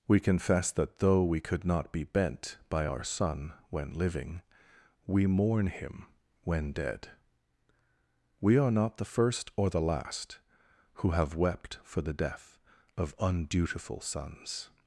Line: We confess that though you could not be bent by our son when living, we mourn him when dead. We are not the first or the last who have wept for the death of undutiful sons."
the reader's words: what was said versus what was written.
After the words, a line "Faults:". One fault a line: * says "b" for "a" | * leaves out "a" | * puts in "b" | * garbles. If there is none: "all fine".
We confess that though we could not be bent by our son when living, we mourn him when dead. We are not the first or the last who have wept for the death of undutiful sons."
Faults:
* says "we" for "you"